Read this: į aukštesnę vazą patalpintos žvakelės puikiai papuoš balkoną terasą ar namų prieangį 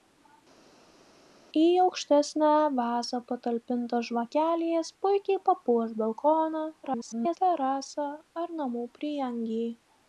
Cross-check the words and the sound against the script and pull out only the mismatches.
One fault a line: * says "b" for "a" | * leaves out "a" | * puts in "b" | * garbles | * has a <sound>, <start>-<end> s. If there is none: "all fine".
* garbles